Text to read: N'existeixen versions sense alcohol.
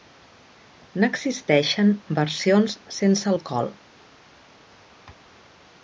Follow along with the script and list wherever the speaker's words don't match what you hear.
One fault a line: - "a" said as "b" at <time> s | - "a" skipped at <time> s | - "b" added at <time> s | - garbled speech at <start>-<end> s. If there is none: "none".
none